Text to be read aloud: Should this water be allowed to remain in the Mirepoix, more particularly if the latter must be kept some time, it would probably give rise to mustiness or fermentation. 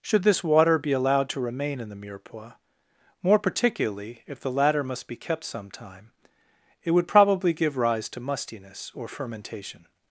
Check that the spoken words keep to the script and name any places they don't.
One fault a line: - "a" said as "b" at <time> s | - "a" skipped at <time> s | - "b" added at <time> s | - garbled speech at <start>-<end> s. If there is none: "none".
none